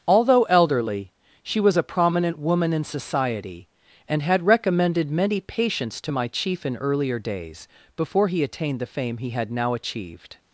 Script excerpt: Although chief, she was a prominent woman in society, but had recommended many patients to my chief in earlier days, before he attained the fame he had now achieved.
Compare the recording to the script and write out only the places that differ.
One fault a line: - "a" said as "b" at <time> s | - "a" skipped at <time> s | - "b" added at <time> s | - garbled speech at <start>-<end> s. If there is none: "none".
- "chief" said as "elderly" at 0.4 s
- "but" said as "and" at 4.1 s